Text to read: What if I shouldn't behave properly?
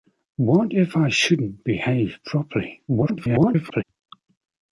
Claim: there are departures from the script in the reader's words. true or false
true